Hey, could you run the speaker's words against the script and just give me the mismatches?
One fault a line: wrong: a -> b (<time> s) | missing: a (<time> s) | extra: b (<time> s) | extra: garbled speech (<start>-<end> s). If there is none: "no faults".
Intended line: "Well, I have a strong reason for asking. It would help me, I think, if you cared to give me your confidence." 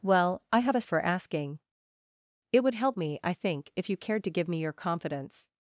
missing: strong reason (0.8 s)